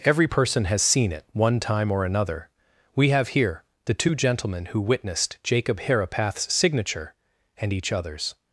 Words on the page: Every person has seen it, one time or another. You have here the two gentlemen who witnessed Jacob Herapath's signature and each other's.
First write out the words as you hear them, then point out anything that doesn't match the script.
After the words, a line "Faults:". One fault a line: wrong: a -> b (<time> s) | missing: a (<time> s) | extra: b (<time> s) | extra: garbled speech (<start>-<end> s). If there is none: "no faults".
Every person has seen it, one time or another. We have here the two gentlemen who witnessed Jacob Herapath's signature and each other's.
Faults:
wrong: You -> We (2.9 s)